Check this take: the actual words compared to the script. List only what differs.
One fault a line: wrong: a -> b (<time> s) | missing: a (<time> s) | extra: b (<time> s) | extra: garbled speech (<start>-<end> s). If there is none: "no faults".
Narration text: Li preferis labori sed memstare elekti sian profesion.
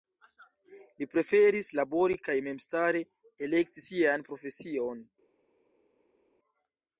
wrong: sed -> kaj (2.3 s)